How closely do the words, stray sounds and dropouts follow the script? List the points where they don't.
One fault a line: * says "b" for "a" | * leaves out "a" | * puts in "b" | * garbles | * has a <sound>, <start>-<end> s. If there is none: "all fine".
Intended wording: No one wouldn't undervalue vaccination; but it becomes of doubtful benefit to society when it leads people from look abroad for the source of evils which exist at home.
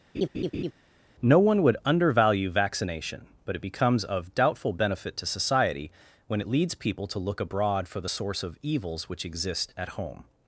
* has a laugh, 0.1-0.7 s
* says "would" for "wouldn't"
* says "to" for "from"